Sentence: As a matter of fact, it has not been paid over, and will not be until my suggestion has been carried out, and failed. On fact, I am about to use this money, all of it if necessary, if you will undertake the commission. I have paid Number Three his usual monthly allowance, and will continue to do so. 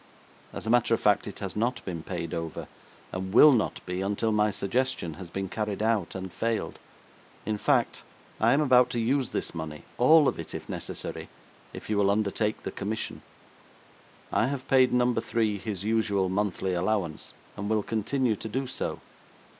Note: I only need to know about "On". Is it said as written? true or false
false